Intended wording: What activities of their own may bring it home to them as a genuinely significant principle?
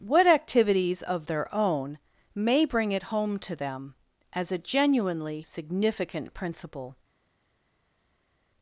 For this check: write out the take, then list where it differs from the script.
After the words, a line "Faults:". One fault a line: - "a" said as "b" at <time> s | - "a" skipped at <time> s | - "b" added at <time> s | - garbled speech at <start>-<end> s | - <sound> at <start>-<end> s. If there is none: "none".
What activities of their own may bring it home to them as a genuinely significant principle?
Faults:
none